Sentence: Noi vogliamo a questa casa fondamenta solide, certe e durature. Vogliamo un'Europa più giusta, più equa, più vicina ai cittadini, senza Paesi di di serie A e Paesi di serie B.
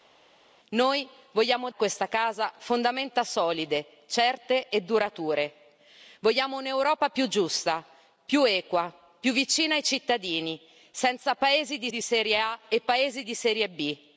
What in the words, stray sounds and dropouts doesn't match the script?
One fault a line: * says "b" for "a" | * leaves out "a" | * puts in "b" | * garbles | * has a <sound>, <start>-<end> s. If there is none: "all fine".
all fine